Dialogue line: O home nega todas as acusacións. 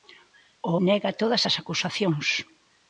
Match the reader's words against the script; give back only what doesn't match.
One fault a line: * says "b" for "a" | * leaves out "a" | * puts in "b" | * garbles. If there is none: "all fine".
* leaves out "home"